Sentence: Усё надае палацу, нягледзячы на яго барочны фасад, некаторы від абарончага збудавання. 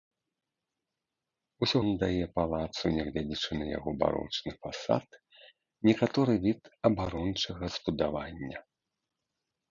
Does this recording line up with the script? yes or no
yes